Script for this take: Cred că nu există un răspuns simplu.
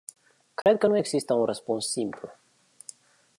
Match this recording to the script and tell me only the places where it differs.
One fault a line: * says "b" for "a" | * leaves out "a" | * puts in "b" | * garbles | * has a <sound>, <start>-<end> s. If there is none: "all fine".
* has a dropout, 0.6-0.7 s